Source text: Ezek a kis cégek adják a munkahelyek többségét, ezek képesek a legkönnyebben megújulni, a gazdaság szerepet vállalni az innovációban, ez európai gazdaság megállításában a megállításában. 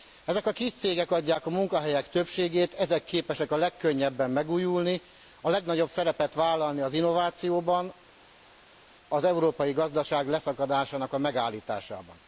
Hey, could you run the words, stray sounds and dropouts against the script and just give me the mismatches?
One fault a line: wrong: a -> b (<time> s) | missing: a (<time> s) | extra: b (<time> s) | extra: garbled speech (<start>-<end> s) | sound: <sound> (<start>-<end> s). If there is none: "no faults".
wrong: gazdaság -> legnagyobb (5.5 s)
wrong: ez -> az (9.1 s)
wrong: megállításában -> leszakadásának (10.3 s)